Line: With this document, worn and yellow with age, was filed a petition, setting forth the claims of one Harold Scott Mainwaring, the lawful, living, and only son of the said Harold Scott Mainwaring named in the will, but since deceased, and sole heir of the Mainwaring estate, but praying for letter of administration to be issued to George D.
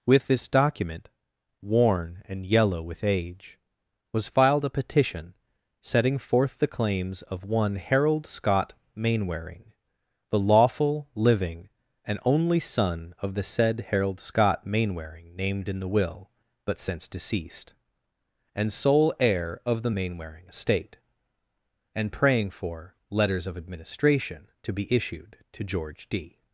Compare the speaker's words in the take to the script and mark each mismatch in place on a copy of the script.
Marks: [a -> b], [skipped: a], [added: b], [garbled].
With this document, worn and yellow with age, was filed a petition, setting forth the claims of one Harold Scott Mainwaring, the lawful, living, and only son of the said Harold Scott Mainwaring named in the will, but since deceased, and sole heir of the Mainwaring estate, [but -> and] praying for [letter -> letters] of administration to be issued to George D.